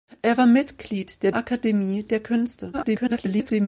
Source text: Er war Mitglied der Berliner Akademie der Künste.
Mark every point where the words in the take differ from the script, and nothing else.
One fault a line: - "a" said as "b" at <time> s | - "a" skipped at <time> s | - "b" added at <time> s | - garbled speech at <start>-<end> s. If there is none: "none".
- "Berliner" skipped at 1.3 s
- garbled speech at 2.7-3.7 s